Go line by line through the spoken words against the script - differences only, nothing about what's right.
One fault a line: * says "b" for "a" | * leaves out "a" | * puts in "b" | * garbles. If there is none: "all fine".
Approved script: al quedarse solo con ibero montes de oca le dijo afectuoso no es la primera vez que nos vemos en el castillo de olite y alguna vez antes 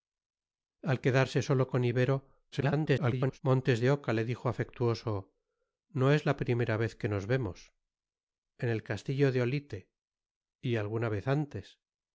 * garbles